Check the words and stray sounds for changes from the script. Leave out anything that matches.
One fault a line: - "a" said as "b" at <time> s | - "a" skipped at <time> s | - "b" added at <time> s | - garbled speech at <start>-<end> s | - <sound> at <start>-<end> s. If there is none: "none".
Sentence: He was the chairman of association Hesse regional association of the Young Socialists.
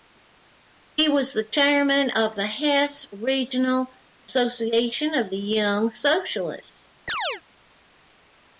- "association" said as "the" at 2.4 s
- chirp at 7.1-7.4 s